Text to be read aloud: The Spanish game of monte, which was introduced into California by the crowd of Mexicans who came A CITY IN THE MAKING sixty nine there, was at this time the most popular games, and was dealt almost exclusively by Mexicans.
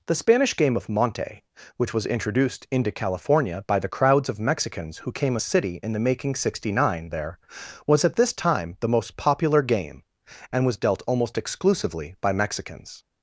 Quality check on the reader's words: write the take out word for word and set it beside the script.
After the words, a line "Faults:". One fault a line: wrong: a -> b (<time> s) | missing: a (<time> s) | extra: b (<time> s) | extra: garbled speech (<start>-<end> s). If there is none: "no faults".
The Spanish game of monte, which was introduced into California by the crowds of Mexicans who came A CITY IN THE MAKING sixty nine there, was at this time the most popular game, and was dealt almost exclusively by Mexicans.
Faults:
wrong: crowd -> crowds (3.9 s)
wrong: games -> game (9.6 s)